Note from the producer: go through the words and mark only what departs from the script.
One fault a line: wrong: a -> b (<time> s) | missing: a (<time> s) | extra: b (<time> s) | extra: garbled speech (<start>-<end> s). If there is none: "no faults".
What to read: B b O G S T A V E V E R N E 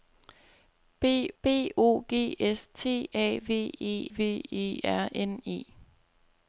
no faults